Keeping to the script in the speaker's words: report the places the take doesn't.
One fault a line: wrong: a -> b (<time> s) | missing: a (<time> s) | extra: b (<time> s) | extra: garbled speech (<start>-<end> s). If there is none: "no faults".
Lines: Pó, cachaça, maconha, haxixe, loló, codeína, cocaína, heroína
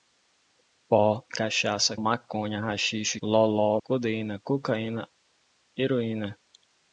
no faults